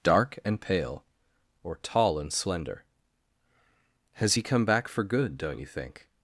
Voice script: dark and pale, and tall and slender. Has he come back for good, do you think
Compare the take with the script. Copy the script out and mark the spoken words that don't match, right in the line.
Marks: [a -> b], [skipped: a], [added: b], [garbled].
dark and pale, [and -> or] tall and slender. Has he come back for good, [do -> don't] you think